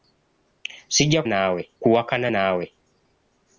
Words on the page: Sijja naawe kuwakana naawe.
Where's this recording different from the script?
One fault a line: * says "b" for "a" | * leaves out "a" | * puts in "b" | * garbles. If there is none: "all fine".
all fine